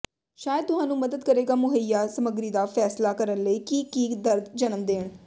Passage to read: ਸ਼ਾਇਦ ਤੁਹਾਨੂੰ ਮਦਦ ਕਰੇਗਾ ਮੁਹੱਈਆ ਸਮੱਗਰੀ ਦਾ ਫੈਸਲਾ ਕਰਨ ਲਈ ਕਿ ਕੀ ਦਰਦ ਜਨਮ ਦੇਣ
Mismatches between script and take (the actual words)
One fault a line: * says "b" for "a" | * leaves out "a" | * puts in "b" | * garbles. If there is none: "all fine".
all fine